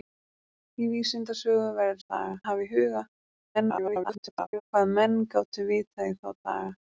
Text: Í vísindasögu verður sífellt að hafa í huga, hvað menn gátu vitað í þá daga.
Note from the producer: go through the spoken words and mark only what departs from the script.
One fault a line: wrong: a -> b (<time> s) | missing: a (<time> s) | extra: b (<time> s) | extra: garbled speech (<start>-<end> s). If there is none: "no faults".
wrong: sífellt -> daga (2.0 s)
extra: garbled speech (3.5-4.6 s)